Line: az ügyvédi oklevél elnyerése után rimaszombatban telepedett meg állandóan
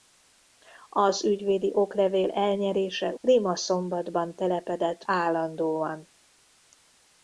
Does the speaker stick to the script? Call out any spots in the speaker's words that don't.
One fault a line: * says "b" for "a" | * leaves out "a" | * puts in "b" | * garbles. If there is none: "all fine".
* leaves out "után"
* leaves out "meg"